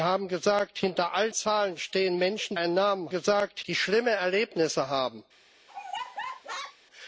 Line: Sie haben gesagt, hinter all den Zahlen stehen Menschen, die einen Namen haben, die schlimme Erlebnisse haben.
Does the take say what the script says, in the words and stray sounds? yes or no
no